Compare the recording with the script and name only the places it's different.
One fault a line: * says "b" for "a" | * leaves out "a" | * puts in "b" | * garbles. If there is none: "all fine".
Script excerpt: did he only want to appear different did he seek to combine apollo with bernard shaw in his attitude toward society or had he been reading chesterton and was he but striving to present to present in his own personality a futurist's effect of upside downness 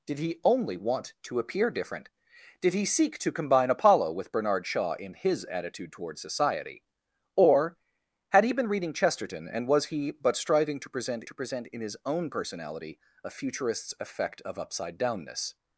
all fine